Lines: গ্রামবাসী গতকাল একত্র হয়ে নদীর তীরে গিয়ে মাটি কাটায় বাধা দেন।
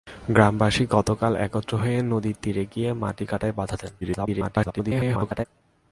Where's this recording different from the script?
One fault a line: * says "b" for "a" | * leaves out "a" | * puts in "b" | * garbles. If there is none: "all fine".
* garbles